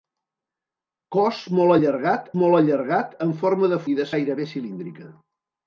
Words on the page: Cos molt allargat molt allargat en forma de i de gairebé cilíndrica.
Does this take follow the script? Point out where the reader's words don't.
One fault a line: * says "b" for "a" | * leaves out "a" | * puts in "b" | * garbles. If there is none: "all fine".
all fine